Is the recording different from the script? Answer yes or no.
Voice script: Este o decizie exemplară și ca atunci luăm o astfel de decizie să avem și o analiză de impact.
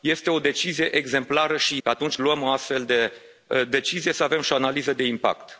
no